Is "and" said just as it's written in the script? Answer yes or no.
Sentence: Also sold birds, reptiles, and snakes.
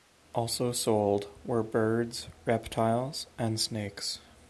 yes